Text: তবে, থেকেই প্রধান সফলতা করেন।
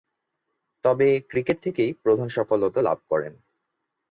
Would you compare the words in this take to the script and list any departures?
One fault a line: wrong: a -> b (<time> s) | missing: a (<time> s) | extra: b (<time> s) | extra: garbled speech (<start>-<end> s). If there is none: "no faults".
extra: ক্রিকেট (1.3 s)
extra: লাভ (2.8 s)